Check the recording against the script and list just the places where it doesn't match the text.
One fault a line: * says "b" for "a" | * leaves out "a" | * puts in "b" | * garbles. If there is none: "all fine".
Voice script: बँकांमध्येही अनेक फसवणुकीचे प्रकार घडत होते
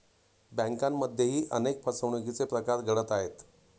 * says "आहेत" for "होते"